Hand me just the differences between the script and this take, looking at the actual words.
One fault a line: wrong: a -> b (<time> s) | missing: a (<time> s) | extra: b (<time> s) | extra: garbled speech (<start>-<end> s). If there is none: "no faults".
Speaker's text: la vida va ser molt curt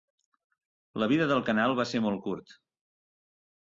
extra: del canal (1.3 s)